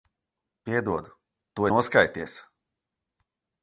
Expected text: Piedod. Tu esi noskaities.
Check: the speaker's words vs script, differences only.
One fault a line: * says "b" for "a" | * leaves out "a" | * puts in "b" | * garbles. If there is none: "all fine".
* leaves out "esi"